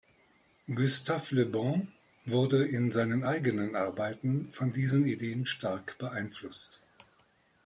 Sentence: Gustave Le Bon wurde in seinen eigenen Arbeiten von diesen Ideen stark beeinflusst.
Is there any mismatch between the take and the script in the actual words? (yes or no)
no